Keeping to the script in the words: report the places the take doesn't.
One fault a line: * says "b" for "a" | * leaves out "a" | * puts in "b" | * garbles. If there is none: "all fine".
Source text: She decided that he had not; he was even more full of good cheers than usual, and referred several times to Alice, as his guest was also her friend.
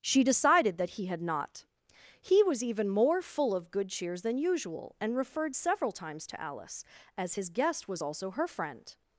all fine